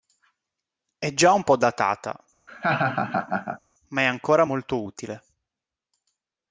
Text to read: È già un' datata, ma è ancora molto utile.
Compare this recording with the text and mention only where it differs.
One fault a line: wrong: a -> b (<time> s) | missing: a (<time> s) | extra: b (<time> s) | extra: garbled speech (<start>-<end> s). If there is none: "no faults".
extra: po (1.4 s)